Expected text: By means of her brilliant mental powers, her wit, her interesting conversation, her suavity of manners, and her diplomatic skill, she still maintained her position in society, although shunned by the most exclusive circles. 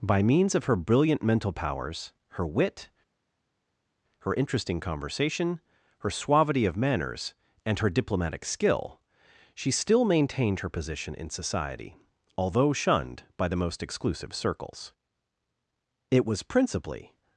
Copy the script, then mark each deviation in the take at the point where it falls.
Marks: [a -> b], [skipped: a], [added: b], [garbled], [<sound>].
By means of her brilliant mental powers, her wit, her interesting conversation, her suavity of manners, and her diplomatic skill, she still maintained her position in society, although shunned by the most exclusive circles. [added: It was principally]